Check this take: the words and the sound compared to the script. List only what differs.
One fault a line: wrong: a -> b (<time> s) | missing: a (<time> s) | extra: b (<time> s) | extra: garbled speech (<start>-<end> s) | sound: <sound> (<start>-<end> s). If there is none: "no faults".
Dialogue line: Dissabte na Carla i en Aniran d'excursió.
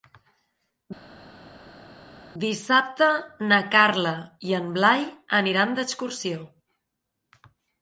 extra: Blai (4.8 s)